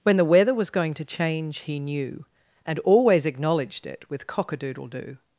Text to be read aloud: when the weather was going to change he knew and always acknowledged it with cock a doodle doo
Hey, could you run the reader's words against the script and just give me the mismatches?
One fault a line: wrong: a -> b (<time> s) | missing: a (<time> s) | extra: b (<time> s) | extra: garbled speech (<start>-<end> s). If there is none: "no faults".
no faults